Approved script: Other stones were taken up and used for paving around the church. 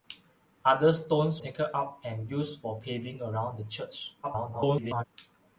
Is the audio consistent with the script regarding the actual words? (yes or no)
no